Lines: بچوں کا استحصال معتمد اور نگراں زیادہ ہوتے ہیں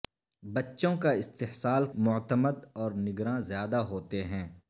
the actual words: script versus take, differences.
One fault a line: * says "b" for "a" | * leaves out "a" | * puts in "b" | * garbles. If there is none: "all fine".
all fine